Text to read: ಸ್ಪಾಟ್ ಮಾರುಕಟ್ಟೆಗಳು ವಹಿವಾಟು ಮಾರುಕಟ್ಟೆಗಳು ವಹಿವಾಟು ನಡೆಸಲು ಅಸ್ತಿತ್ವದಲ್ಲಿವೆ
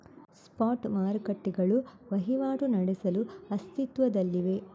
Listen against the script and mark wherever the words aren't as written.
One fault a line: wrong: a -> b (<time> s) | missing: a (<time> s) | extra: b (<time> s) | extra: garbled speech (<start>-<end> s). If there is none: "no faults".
missing: ಮಾರುಕಟ್ಟೆಗಳು ವಹಿವಾಟು (2.6 s)